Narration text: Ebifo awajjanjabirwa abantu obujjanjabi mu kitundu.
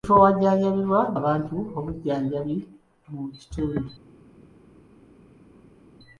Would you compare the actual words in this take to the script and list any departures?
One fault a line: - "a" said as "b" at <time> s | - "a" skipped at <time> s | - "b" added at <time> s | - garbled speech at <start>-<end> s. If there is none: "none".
none